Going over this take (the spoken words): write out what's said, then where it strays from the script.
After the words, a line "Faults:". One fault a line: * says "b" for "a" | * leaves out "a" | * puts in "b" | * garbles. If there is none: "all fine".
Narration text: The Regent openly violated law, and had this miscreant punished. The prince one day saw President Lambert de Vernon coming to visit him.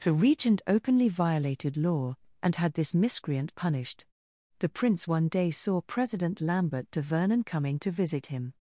The Regent openly violated law, and had this miscreant punished. The prince one day saw President Lambert de Vernon coming to visit him.
Faults:
all fine